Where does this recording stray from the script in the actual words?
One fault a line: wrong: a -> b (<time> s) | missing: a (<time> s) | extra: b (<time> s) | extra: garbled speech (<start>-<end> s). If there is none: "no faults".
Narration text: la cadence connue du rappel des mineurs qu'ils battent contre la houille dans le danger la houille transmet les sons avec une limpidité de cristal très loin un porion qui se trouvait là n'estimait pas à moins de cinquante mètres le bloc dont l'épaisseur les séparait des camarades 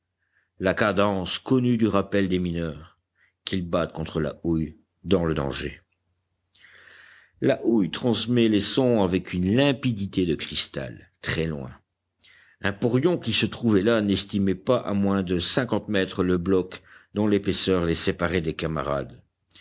no faults